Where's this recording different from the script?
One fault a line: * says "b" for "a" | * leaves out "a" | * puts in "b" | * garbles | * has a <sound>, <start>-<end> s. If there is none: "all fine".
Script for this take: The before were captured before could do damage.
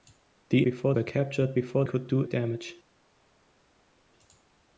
all fine